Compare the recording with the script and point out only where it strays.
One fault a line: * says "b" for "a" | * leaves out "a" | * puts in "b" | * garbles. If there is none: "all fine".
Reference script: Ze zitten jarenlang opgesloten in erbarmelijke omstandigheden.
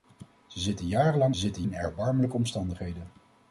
* says "zitten" for "opgesloten"